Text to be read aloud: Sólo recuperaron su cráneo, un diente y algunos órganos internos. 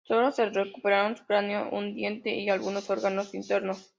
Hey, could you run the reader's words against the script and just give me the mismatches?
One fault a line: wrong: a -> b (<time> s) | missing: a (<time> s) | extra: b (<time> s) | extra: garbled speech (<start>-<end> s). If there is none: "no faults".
extra: se (0.3 s)